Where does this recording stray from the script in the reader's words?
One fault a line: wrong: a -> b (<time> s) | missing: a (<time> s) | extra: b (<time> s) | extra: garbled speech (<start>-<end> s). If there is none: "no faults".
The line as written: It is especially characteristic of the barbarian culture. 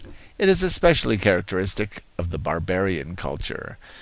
no faults